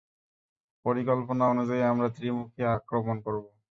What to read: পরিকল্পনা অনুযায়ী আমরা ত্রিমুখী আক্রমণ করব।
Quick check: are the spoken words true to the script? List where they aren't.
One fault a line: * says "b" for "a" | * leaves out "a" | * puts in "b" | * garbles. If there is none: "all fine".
all fine